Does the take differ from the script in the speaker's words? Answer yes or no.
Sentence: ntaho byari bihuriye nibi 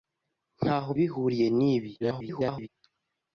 yes